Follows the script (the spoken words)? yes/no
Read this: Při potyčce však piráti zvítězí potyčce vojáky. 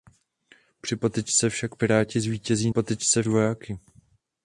yes